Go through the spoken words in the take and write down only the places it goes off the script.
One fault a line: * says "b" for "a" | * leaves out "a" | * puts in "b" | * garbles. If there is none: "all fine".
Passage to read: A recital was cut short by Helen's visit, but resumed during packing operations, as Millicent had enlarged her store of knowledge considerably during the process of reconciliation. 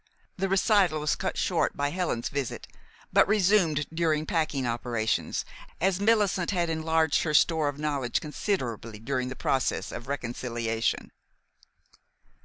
* says "The" for "A"